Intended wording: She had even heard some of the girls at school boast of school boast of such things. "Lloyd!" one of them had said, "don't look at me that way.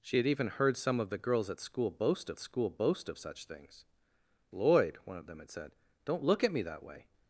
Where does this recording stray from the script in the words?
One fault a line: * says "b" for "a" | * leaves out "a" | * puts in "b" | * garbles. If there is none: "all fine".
all fine